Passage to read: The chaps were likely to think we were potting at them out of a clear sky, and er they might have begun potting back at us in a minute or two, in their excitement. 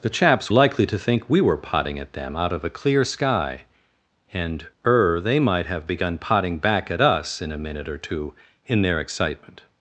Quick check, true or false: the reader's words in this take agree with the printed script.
false